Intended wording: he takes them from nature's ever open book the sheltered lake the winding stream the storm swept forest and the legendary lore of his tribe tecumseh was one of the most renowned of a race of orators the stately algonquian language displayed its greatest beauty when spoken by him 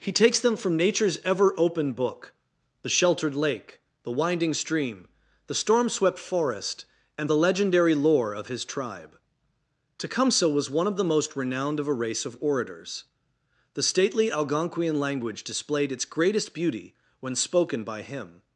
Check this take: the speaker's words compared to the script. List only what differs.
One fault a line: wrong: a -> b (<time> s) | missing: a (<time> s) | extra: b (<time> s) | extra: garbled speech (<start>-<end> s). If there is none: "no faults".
no faults